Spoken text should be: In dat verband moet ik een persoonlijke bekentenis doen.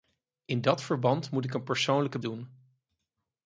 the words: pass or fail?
fail